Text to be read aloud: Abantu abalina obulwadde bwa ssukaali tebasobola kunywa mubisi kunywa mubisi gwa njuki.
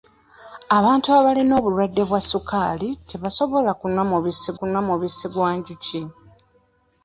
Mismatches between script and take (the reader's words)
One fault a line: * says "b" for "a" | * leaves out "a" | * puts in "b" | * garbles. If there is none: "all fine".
all fine